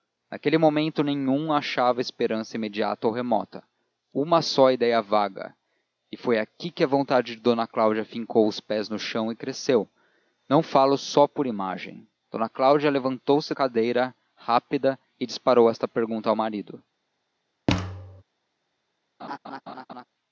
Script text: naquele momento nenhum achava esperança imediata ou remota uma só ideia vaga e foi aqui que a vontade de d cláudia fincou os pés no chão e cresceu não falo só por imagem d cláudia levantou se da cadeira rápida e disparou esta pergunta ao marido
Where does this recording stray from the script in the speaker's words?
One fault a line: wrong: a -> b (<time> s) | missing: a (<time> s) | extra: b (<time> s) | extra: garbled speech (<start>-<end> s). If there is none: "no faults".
missing: da (13.5 s)